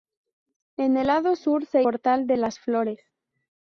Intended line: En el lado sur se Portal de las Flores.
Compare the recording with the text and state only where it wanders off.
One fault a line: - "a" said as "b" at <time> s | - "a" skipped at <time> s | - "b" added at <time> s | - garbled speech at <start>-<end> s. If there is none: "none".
none